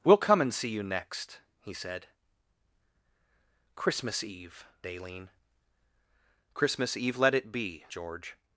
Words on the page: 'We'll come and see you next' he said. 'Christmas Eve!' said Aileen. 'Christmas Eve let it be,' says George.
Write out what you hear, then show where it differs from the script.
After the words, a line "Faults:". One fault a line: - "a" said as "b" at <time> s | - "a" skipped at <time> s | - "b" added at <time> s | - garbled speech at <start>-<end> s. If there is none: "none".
'We'll come and see you next' he said. 'Christmas Eve!' Aileen. 'Christmas Eve let it be,' George.
Faults:
- "said" skipped at 4.7 s
- "says" skipped at 7.8 s